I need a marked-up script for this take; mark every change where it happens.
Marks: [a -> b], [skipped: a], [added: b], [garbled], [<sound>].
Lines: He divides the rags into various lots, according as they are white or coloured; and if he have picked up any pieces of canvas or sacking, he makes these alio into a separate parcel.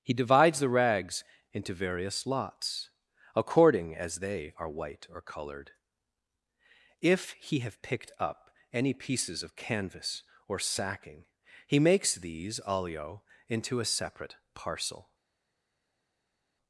He divides the rags into various lots, according as they are white or [coloured; and -> colored] if he have picked up any pieces of canvas or sacking, he makes these alio into a separate parcel.